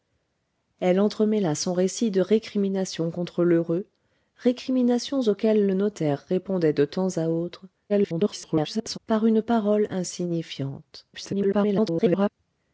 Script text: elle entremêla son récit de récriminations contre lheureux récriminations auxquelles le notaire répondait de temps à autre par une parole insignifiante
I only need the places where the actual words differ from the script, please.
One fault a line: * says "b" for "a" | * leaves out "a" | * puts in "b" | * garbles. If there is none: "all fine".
* garbles
* garbles